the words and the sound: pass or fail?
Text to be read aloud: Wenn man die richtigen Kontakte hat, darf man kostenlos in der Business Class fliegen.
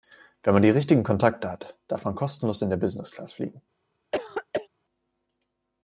fail